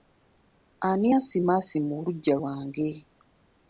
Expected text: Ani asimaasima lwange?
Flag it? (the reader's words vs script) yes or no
yes